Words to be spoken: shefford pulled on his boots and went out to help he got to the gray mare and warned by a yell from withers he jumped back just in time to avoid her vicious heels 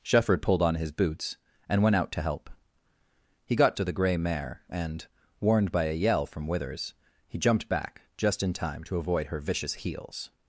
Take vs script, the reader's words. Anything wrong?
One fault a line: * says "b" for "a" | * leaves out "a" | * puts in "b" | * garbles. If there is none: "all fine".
all fine